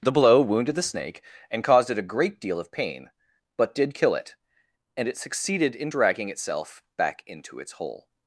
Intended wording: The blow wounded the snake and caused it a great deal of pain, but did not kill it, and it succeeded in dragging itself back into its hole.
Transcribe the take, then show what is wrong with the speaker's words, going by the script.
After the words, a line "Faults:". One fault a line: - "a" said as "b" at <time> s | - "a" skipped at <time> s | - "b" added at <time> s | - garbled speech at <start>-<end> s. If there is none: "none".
The blow wounded the snake and caused it a great deal of pain, but did kill it, and it succeeded in dragging itself back into its hole.
Faults:
- "not" skipped at 3.9 s